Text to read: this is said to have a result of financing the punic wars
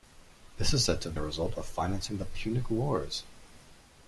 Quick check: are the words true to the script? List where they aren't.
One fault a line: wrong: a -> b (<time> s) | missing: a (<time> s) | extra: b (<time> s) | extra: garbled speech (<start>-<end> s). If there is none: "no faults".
no faults